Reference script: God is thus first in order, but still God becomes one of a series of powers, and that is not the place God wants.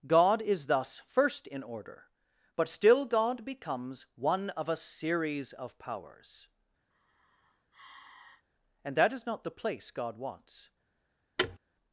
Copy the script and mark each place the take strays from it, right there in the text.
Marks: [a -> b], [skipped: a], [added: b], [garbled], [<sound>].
God is thus first in order, but still God becomes one of a series of powers, [sigh] and that is not the place God wants. [thud]